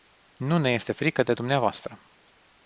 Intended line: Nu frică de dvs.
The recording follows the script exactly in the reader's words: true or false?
false